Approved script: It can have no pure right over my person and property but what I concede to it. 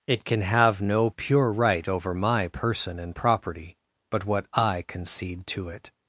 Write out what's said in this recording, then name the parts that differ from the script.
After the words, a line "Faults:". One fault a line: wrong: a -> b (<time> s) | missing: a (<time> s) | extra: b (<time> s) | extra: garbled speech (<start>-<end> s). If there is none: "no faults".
It can have no pure right over my person and property but what I concede to it.
Faults:
no faults